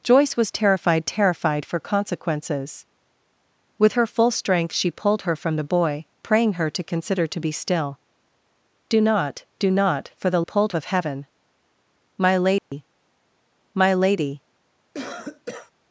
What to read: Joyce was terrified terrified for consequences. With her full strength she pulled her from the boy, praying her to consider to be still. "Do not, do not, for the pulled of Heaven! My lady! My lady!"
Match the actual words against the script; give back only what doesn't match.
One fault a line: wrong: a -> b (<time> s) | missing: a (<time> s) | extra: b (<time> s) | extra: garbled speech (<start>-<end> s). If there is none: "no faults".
no faults